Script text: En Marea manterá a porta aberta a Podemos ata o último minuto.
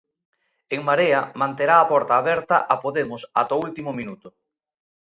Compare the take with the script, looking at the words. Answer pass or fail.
pass